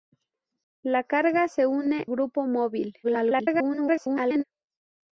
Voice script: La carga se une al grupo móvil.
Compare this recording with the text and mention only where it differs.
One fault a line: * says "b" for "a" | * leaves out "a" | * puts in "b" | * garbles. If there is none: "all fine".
* leaves out "al"
* garbles